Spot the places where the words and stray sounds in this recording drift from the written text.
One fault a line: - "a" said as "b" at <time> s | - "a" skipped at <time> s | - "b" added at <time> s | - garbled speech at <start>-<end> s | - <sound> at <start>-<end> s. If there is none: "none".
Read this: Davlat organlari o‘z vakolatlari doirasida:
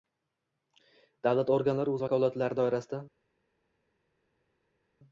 none